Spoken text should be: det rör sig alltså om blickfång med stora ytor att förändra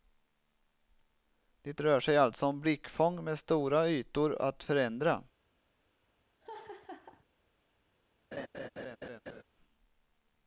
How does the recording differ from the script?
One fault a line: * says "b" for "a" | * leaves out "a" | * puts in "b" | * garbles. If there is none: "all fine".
all fine